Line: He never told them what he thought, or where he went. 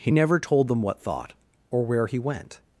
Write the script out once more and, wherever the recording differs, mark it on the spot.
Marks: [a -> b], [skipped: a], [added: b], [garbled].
He never told them what [skipped: he] thought, or where he went.